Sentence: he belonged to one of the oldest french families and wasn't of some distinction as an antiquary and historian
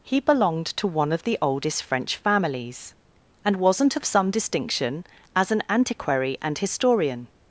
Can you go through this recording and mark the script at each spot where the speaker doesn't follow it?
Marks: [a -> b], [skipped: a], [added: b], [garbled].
he belonged to one of the oldest french families and wasn't of some distinction as an antiquary and historian